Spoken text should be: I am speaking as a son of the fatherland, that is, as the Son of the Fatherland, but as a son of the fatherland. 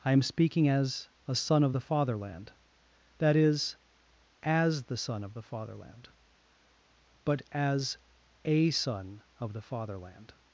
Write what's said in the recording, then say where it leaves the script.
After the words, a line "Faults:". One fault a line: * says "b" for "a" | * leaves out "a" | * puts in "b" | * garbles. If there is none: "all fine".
I am speaking as a son of the fatherland, that is, as the Son of the Fatherland, but as a son of the fatherland.
Faults:
all fine